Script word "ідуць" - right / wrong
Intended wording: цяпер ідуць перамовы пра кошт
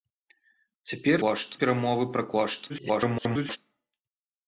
wrong